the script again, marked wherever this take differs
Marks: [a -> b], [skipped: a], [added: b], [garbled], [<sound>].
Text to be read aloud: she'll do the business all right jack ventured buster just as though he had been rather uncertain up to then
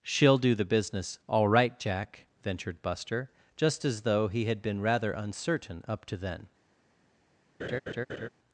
she'll do the business all right jack ventured buster just as though he had been rather uncertain up to then [laugh]